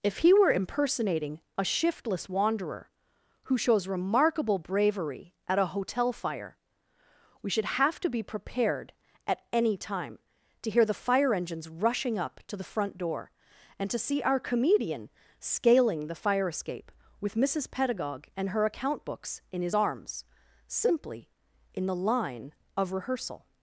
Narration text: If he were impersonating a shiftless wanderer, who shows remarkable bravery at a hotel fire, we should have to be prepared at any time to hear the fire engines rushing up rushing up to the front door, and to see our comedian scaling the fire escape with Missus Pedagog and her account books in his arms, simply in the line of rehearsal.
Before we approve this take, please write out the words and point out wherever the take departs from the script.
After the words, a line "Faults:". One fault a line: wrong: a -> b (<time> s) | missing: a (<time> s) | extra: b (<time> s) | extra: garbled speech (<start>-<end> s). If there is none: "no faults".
If he were impersonating a shiftless wanderer, who shows remarkable bravery at a hotel fire, we should have to be prepared at any time to hear the fire engines rushing up to the front door, and to see our comedian scaling the fire escape with Missus Pedagog and her account books in his arms, simply in the line of rehearsal.
Faults:
missing: rushing up (12.4 s)